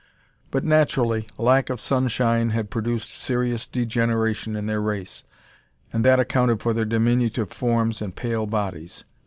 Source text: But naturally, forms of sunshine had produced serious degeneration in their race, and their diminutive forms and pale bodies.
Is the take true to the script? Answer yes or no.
no